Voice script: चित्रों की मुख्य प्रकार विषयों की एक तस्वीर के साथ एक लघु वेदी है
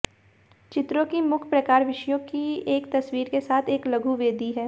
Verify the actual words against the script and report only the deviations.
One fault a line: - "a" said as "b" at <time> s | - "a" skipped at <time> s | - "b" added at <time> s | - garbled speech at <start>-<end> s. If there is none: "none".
none